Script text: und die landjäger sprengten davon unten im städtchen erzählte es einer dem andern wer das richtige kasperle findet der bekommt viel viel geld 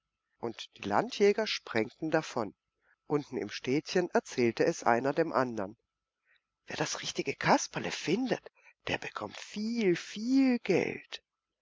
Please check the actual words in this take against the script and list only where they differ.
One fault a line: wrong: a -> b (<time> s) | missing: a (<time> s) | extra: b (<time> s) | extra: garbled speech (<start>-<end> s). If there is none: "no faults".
no faults